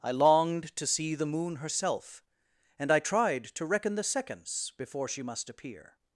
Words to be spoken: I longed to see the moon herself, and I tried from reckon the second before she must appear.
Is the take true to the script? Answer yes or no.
no